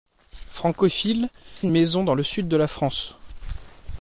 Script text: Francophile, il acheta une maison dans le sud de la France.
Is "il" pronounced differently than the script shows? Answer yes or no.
yes